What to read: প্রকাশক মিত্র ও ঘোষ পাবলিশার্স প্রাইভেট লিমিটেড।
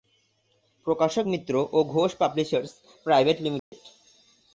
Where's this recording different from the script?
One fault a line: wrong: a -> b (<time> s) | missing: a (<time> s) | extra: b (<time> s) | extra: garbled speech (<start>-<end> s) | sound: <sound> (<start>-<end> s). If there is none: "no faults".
sound: dropout (3.6-3.7 s)